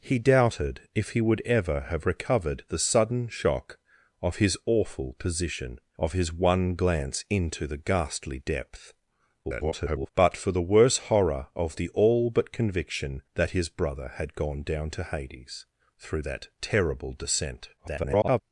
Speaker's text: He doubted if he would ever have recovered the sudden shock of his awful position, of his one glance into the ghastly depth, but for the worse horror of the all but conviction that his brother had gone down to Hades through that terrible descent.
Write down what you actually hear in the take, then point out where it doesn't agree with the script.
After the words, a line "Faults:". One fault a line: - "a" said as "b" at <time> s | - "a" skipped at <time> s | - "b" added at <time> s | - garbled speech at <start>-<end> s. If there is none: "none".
He doubted if he would ever have recovered the sudden shock of his awful position, of his one glance into the ghastly depth, [garbled] but for the worse horror of the all but conviction that his brother had gone down to Hades through that terrible descent. [garbled]
Faults:
- garbled speech at 9.4-10.1 s
- garbled speech at 17.8-18.4 s